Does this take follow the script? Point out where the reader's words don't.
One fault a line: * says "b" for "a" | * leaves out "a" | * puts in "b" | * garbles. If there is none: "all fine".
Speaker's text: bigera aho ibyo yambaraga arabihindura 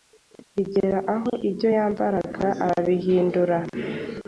all fine